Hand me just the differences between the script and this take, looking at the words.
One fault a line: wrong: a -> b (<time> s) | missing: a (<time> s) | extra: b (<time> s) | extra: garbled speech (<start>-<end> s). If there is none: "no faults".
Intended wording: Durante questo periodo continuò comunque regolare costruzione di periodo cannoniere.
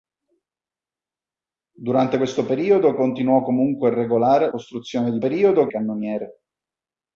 no faults